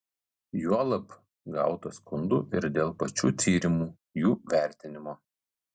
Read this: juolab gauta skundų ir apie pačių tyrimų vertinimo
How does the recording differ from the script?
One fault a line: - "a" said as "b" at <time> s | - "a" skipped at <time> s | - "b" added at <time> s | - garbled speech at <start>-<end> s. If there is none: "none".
- "apie" said as "dėl" at 2.8 s
- "jų" added at 4.2 s